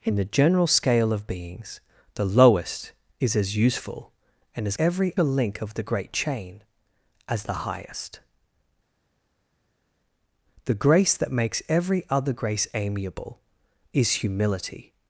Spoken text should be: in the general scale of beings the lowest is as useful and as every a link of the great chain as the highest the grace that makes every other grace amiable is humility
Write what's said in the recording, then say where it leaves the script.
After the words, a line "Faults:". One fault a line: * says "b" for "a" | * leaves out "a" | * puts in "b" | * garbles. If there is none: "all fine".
in the general scale of beings the lowest is as useful and as every a link of the great chain as the highest the grace that makes every other grace amiable is humility
Faults:
all fine